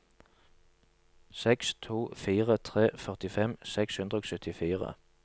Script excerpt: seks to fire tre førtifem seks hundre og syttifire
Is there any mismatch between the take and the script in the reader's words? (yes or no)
no